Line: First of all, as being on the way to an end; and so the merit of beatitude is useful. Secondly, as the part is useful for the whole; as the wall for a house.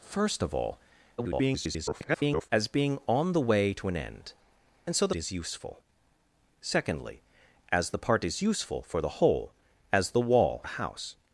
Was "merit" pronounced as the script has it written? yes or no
no